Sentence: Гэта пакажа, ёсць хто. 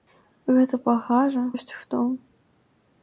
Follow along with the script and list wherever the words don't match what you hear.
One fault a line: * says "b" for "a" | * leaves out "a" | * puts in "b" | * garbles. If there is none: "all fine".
all fine